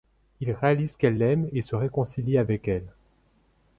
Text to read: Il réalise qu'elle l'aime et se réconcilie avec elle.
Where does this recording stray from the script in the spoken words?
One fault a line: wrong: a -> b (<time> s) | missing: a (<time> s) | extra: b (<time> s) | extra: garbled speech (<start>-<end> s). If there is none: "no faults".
no faults